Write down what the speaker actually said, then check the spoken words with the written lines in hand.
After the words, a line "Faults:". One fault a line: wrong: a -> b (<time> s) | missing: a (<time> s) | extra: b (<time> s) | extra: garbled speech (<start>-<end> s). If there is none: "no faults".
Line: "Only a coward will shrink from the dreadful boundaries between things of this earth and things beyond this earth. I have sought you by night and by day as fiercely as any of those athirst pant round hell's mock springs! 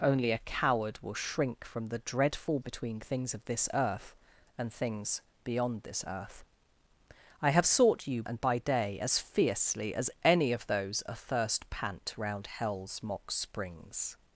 "Only a coward will shrink from the dreadful between things of this earth and things beyond this earth. I have sought you and by day as fiercely as any of those athirst pant round hell's mock springs!
Faults:
missing: boundaries (2.6 s)
missing: by night (8.2 s)